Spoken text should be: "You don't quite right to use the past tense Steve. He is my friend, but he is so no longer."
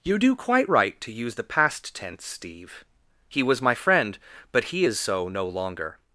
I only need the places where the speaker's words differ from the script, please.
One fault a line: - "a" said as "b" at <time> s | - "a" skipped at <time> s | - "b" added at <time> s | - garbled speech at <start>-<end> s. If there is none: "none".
- "don't" said as "do" at 0.2 s
- "is" said as "was" at 3.4 s